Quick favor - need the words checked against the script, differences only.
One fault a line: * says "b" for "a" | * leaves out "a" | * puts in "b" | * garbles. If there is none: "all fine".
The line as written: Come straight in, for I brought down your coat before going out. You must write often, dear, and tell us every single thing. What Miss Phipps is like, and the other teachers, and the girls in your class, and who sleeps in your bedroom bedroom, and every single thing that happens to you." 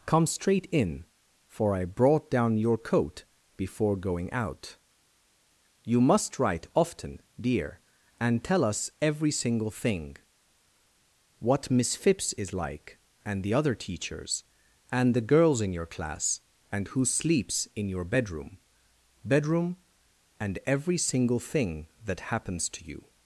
all fine